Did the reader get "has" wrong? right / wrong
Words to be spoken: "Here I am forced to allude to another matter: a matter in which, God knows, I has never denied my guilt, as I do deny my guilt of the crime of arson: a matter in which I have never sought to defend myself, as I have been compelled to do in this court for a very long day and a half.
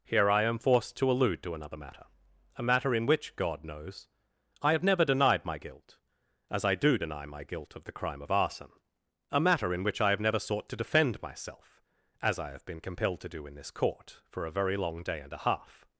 wrong